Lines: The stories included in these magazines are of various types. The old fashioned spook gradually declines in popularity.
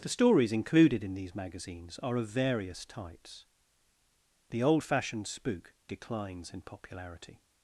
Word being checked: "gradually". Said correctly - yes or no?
no